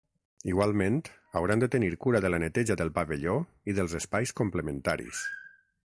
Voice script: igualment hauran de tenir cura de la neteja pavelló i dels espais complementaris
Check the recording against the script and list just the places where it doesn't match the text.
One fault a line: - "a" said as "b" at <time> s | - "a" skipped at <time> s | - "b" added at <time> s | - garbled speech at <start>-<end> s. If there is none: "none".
- "del" added at 2.8 s